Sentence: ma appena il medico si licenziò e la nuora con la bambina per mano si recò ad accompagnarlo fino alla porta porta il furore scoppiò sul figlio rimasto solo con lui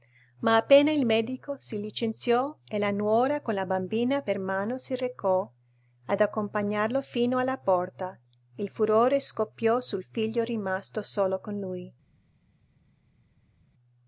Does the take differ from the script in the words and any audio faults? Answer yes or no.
yes